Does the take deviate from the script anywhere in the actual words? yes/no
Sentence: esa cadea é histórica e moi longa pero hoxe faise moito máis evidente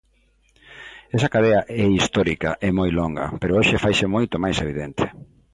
no